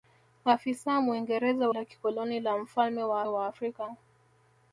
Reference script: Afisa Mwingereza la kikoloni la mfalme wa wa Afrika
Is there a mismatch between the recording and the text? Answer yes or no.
no